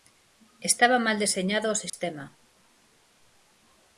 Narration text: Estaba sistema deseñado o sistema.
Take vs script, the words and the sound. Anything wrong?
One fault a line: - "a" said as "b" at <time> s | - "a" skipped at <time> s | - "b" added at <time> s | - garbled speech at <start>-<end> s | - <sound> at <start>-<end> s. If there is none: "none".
- "sistema" said as "mal" at 1.1 s
- dropout at 1.9-1.9 s